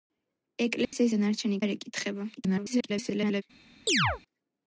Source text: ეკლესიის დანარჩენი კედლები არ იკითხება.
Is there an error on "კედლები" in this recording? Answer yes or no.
yes